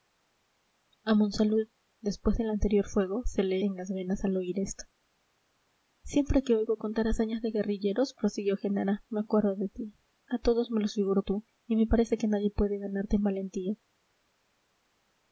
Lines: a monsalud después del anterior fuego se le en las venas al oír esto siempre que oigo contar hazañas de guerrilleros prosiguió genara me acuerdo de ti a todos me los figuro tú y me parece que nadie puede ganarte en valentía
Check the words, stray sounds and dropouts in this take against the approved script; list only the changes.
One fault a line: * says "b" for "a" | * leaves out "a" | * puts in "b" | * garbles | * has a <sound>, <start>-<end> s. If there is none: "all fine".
all fine